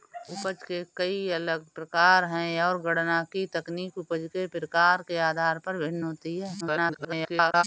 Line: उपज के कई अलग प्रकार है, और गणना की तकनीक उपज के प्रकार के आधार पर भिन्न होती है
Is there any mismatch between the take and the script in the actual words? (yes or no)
yes